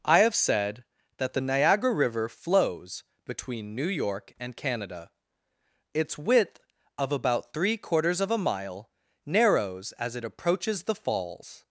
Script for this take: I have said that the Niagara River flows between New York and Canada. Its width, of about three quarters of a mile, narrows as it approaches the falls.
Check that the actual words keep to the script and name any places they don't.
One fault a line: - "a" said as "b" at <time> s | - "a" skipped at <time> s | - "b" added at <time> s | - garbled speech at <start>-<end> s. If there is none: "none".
none